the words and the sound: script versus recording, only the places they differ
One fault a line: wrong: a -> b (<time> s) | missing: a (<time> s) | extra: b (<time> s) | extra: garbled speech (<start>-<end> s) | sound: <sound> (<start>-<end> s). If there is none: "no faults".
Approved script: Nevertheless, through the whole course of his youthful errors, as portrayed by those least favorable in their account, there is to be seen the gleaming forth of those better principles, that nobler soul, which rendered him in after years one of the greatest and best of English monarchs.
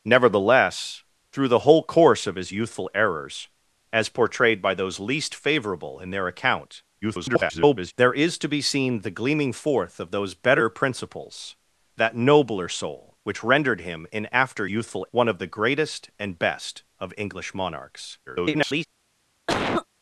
extra: garbled speech (7.0-7.9 s)
wrong: years -> youthful (14.7 s)
extra: garbled speech (18.3-18.9 s)
sound: cough (19.5-19.9 s)